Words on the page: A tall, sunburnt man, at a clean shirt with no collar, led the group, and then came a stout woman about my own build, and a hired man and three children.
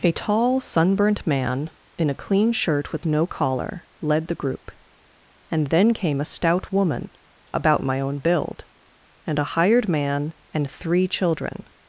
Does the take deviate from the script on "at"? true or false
true